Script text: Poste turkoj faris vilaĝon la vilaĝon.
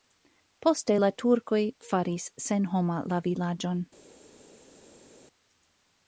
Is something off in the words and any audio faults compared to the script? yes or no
yes